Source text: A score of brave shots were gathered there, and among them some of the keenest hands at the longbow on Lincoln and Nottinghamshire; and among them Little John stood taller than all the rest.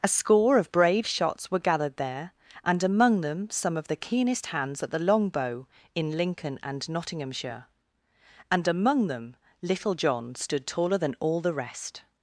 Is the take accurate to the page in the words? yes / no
no